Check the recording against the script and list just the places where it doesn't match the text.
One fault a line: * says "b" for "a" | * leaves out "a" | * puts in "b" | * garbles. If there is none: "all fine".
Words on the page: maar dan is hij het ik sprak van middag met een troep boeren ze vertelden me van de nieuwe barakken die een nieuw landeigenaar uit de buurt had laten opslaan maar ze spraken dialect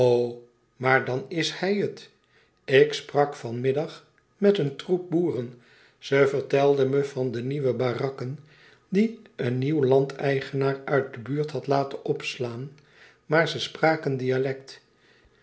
all fine